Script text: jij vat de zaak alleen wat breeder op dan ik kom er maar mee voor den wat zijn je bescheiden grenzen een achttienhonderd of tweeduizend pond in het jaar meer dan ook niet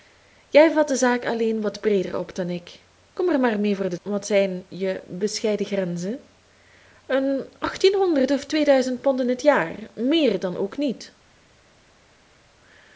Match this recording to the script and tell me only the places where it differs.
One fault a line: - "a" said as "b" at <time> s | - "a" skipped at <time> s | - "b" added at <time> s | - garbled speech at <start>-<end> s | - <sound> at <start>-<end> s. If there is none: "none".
none